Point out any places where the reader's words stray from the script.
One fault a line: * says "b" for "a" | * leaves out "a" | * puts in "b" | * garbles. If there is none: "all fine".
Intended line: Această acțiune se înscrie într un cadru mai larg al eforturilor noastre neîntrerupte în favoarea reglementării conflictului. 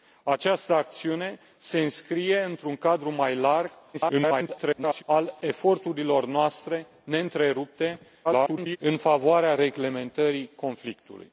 * garbles
* garbles